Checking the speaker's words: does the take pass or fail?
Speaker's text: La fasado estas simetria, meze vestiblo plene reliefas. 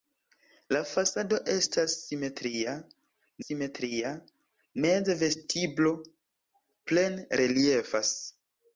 fail